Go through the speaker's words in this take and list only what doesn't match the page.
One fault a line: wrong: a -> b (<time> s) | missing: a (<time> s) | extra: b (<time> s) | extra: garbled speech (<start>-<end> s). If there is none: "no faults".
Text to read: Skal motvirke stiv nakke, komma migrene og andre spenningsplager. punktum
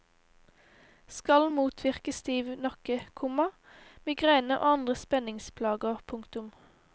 no faults